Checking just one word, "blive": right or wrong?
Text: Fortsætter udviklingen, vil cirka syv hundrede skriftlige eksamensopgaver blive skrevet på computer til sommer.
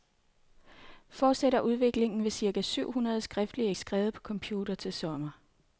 wrong